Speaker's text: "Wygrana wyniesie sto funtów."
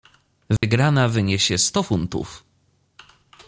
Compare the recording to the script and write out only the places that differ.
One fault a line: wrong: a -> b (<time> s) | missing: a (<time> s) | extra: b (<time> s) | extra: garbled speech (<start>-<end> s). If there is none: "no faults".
no faults